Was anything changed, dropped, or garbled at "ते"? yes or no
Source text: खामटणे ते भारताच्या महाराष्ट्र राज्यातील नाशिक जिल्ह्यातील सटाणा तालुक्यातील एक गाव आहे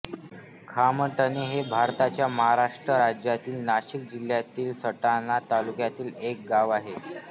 yes